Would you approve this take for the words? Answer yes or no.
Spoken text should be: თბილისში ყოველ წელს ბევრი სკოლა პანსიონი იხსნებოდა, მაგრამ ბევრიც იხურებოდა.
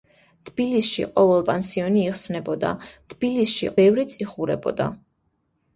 no